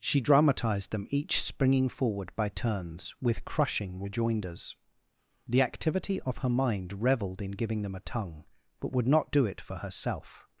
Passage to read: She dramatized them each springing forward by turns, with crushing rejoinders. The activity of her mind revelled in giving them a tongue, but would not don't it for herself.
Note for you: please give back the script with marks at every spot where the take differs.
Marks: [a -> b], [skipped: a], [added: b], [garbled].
She dramatized them each springing forward by turns, with crushing rejoinders. The activity of her mind revelled in giving them a tongue, but would not [don't -> do] it for herself.